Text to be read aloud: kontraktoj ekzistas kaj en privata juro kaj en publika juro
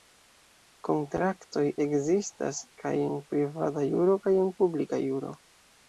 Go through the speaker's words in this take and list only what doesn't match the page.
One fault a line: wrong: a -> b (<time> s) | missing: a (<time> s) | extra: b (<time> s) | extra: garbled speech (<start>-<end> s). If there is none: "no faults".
no faults